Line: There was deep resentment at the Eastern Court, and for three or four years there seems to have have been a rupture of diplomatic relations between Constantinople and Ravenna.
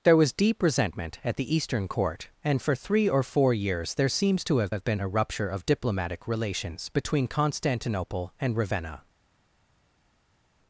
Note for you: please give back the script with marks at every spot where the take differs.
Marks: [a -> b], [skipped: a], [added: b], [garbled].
There was deep resentment at the Eastern Court, and for three or four years there seems to have have been a rupture of diplomatic relations between Constantinople and Ravenna.